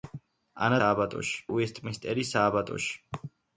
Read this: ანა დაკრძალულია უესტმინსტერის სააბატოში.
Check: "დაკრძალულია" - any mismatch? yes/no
yes